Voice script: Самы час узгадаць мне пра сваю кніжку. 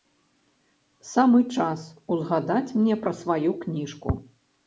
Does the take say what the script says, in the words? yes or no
yes